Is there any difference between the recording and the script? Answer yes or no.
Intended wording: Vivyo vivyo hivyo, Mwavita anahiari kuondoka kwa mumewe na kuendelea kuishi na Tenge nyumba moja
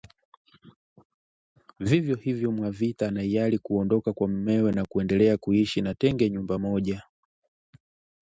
yes